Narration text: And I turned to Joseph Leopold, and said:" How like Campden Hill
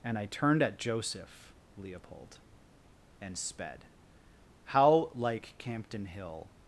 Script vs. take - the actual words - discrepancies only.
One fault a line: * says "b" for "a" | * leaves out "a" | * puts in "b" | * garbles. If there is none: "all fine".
* says "at" for "to"
* says "sped" for "said"